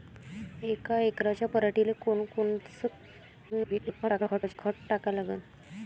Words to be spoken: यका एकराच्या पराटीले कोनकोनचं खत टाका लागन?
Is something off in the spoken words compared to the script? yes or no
yes